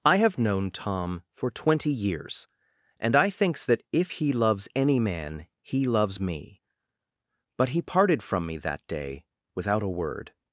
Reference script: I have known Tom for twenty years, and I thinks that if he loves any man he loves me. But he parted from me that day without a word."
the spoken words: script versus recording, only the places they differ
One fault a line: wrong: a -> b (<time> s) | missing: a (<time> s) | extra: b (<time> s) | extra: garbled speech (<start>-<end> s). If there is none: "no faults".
no faults